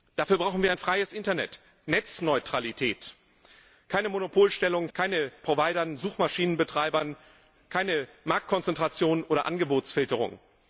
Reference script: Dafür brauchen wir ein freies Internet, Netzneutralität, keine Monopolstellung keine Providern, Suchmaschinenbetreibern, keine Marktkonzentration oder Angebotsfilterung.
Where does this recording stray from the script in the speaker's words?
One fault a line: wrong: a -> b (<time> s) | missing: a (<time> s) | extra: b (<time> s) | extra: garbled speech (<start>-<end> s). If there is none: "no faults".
no faults